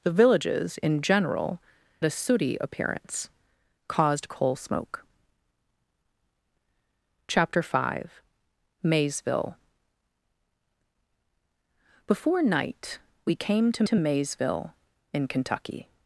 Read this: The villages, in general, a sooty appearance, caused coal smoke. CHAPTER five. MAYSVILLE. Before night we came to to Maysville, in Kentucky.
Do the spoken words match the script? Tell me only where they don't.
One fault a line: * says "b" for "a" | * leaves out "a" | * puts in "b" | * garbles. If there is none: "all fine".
all fine